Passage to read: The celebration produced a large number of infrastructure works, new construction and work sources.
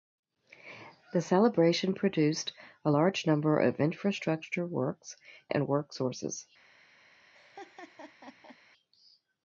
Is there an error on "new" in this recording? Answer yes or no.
yes